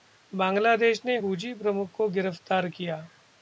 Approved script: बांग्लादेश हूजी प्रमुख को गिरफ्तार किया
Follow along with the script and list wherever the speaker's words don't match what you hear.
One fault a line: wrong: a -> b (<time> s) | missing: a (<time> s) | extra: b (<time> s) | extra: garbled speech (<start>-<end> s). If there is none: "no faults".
extra: ने (1.1 s)